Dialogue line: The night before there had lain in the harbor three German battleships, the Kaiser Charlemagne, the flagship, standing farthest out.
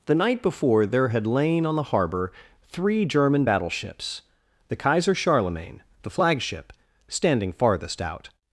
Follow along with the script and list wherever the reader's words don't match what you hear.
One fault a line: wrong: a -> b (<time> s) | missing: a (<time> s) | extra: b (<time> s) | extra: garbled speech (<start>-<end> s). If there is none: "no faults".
wrong: in -> on (1.6 s)